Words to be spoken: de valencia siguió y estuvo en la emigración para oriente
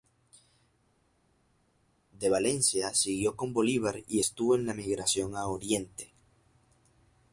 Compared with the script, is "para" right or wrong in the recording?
wrong